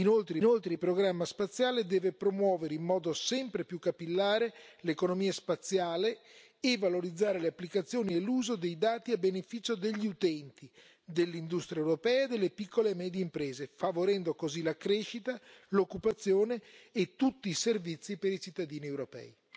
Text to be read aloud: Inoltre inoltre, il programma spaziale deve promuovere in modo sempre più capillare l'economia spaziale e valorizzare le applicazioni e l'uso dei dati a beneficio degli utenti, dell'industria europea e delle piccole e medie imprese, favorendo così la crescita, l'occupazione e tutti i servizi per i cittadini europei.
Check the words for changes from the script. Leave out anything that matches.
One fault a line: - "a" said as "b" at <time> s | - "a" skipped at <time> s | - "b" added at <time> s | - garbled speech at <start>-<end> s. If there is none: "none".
none